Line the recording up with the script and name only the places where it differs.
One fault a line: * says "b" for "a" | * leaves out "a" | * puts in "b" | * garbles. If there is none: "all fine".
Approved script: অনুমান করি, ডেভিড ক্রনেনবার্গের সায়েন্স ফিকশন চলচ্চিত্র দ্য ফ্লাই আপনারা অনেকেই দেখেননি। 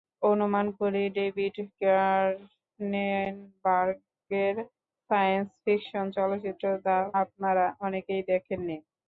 * leaves out "ফ্লাই"